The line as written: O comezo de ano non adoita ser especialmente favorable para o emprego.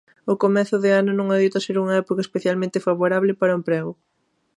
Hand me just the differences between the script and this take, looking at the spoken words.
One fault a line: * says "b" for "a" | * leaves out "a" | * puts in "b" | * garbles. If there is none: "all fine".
* puts in "unha época"